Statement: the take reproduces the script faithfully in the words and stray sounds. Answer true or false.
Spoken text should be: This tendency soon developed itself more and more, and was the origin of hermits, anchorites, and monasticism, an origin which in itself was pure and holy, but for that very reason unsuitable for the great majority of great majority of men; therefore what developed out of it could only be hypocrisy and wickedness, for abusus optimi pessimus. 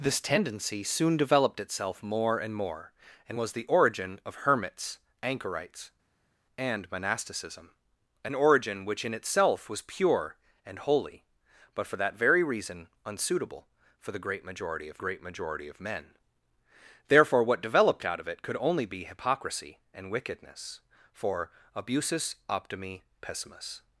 true